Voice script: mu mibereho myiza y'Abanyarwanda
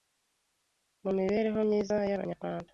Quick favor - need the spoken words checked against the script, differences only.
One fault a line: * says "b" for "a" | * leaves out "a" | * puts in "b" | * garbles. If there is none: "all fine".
all fine